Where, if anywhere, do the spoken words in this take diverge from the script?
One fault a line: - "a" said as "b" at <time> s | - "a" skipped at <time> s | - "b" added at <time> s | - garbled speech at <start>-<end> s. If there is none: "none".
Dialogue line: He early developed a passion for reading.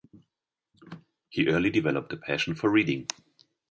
none